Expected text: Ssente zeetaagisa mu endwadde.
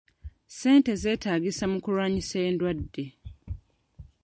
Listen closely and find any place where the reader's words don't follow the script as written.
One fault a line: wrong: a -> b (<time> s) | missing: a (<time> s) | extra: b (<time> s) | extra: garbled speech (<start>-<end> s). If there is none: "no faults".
extra: kulwanyisa (1.8 s)